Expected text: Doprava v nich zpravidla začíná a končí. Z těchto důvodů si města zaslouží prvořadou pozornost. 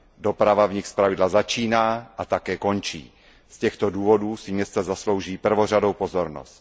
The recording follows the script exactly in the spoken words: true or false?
false